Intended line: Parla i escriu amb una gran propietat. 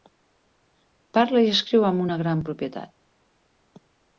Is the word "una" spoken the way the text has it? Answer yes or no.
yes